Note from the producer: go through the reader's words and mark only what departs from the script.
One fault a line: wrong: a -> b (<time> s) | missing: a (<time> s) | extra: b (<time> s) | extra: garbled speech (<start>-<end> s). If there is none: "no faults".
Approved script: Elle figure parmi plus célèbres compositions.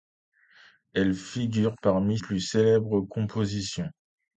no faults